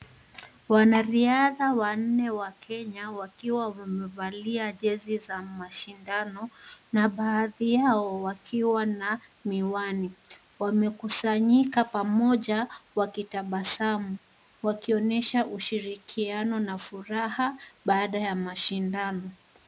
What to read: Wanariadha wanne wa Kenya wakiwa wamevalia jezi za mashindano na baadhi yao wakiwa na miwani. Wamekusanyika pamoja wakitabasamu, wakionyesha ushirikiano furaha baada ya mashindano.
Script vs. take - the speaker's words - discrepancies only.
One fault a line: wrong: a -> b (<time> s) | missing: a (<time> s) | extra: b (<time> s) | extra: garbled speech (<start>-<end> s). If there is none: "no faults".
extra: na (16.6 s)